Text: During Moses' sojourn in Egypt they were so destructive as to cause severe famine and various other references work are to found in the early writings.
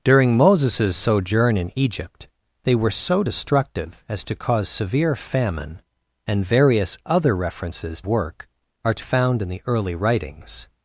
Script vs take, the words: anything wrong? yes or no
no